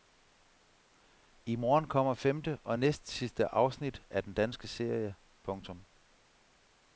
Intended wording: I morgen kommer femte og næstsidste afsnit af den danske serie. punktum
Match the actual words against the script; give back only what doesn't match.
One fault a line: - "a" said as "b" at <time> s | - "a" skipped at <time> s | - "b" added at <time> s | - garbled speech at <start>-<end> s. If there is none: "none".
none